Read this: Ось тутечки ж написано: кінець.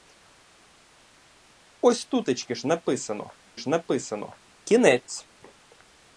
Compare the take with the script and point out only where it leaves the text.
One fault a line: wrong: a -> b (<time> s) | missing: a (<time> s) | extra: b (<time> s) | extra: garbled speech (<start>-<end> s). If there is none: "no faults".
extra: ж написано (3.6 s)